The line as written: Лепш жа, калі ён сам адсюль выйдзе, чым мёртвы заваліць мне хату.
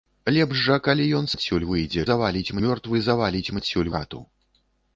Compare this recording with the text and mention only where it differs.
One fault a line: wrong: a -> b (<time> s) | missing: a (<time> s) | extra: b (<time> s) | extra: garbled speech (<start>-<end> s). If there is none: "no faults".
missing: сам (1.3 s)
wrong: чым -> заваліць (2.1 s)
wrong: мне -> адсюль (3.6 s)